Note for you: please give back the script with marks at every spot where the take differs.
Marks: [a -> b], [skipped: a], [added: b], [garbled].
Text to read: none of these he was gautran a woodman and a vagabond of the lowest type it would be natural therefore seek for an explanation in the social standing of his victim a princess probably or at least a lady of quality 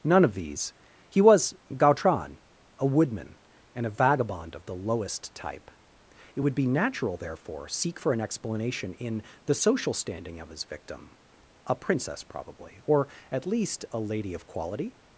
none of these he was gautran a woodman and a vagabond of the lowest type it would be natural therefore seek for an explanation in the social standing of his victim a princess probably or at least a lady of quality